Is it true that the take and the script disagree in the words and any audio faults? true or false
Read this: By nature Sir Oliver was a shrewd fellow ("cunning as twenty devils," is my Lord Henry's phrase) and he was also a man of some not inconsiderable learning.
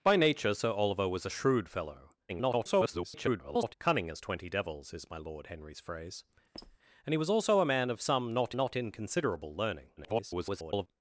true